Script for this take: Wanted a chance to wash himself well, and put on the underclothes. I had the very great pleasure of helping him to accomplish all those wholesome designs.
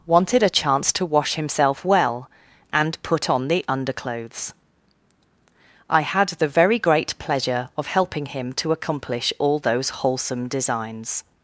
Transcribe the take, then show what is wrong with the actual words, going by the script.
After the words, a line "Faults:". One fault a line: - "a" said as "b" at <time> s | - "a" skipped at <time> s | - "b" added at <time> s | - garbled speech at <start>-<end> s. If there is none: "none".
Wanted a chance to wash himself well, and put on the underclothes. I had the very great pleasure of helping him to accomplish all those wholesome designs.
Faults:
none